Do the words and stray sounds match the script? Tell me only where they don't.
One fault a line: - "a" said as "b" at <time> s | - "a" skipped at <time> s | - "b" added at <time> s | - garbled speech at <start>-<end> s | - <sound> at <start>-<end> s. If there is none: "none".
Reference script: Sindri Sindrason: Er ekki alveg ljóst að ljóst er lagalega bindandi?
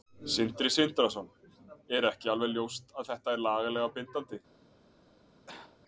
- "ljóst" said as "þetta" at 3.1 s
- cough at 5.5-5.8 s